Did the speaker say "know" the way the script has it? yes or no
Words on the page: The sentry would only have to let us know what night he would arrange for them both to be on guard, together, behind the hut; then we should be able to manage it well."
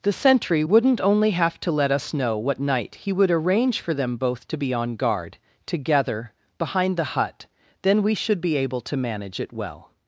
yes